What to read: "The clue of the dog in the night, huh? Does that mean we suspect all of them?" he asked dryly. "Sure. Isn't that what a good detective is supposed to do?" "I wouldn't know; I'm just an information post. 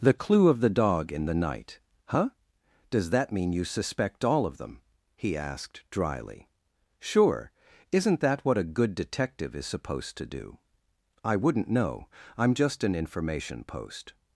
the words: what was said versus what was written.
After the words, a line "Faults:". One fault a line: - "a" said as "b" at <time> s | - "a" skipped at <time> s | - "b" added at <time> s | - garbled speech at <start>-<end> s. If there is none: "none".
"The clue of the dog in the night, huh? Does that mean you suspect all of them?" he asked dryly. "Sure. Isn't that what a good detective is supposed to do?" "I wouldn't know; I'm just an information post.
Faults:
- "we" said as "you" at 3.5 s